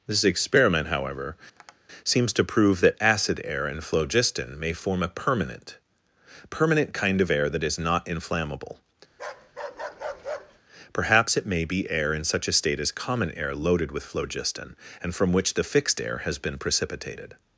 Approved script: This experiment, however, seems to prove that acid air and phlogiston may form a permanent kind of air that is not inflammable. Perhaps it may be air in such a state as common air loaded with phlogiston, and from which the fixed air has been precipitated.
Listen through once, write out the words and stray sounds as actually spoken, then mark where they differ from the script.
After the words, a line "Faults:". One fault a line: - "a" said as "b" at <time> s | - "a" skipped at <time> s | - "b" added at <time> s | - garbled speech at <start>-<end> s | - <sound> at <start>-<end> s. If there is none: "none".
This experiment, however, seems to prove that acid air and phlogiston may form a permanent permanent kind of air that is not inflammable. Perhaps it may be air in such a state as common air loaded with phlogiston, and from which the fixed air has been precipitated.
Faults:
- tap at 1.6-1.8 s
- "permanent" added at 6.5 s
- bark at 9.1-10.6 s